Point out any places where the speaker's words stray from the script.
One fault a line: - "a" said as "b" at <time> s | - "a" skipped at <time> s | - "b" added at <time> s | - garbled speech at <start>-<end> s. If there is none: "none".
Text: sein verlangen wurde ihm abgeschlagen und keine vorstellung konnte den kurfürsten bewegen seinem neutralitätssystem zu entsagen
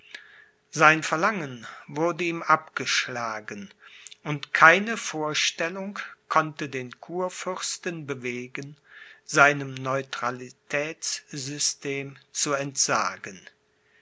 none